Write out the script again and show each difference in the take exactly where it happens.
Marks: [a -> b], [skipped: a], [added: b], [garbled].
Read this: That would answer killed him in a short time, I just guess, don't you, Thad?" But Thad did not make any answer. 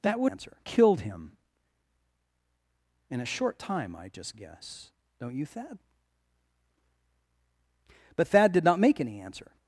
That would answer killed him in a short time, I just guess, don't you, Thad?" But Thad did not make any answer.